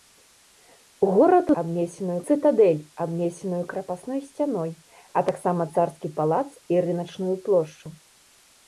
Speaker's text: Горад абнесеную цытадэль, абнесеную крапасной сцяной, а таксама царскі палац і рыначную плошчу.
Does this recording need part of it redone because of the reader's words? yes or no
no